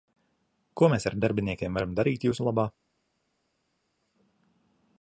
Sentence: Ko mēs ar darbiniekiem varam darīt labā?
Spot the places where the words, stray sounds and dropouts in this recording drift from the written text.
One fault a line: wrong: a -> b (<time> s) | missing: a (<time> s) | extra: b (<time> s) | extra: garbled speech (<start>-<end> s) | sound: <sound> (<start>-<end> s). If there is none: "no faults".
extra: jūsu (2.3 s)